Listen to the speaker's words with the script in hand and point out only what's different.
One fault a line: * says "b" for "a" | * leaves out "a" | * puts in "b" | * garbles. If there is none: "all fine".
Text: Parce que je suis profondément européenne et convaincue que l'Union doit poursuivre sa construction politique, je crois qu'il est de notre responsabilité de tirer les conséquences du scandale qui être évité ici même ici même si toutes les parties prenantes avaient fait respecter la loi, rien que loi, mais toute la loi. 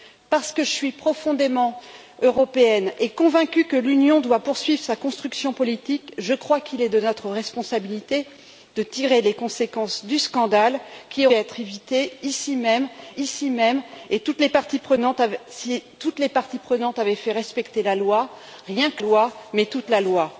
all fine